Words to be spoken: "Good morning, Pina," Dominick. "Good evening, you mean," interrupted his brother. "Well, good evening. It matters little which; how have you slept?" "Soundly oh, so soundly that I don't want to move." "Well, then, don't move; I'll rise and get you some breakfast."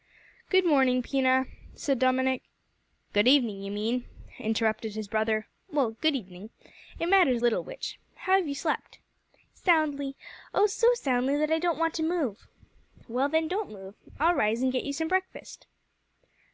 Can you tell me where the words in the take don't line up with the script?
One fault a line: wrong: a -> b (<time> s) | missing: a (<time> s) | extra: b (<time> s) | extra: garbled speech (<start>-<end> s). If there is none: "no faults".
extra: said (1.8 s)